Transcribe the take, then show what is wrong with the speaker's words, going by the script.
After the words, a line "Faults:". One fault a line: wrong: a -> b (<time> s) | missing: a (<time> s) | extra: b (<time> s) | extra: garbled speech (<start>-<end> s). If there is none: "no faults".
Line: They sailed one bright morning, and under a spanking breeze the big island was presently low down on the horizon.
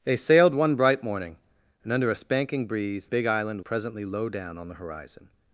They sailed one bright morning, and under a spanking breeze big island presently low down on the horizon.
Faults:
missing: the (3.1 s)
missing: was (3.6 s)